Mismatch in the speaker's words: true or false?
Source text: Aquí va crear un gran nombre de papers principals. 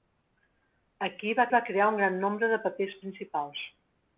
true